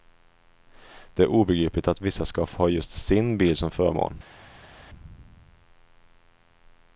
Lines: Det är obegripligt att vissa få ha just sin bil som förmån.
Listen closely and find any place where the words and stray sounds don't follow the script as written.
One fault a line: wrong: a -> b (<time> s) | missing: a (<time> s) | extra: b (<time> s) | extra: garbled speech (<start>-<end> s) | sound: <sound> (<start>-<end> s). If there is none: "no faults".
extra: ska (2.2 s)